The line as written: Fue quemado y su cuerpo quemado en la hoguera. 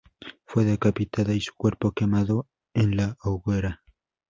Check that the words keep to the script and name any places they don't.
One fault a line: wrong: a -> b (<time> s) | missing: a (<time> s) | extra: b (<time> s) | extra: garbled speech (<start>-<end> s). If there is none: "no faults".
wrong: quemado -> decapitada (0.7 s)